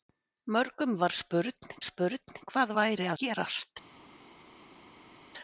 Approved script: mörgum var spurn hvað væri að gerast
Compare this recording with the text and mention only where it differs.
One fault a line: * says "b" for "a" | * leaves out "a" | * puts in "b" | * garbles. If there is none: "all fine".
* puts in "spurn"
* leaves out "að"